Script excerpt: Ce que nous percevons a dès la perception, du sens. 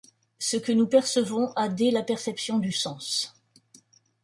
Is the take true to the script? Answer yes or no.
yes